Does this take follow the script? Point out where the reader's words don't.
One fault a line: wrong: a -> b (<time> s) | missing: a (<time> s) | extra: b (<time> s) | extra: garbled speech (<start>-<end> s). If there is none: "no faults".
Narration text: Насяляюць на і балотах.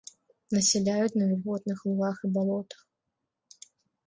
extra: вільготных лугах (1.3 s)